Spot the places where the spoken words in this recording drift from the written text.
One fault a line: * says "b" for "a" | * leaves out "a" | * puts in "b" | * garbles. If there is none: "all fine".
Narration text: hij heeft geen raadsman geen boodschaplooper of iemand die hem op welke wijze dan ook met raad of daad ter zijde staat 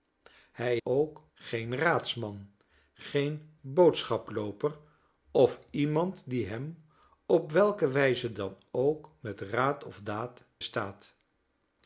* says "ook" for "heeft"
* leaves out "ter zijde"